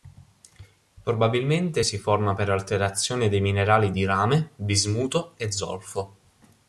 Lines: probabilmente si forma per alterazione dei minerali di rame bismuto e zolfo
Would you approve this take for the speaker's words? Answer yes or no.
yes